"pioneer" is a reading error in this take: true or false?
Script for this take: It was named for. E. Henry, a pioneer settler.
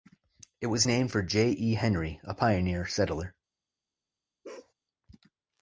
false